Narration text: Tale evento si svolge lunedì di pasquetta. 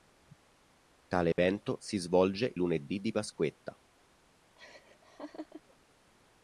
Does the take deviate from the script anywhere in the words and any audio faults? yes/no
yes